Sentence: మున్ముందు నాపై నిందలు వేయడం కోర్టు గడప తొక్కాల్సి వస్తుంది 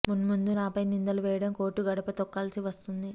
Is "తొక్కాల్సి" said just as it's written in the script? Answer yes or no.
yes